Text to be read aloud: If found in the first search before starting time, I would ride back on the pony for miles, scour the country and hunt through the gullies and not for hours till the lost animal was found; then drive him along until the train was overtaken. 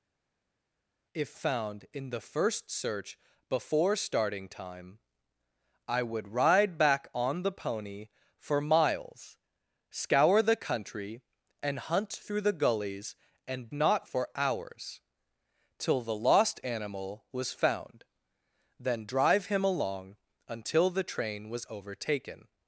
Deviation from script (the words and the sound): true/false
false